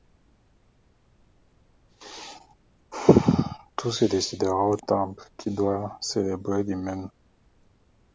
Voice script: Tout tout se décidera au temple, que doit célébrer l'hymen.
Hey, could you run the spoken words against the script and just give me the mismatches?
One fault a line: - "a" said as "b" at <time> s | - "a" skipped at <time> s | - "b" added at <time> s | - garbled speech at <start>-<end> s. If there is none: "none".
- "tout" skipped at 3.9 s
- "que" said as "qui" at 5.4 s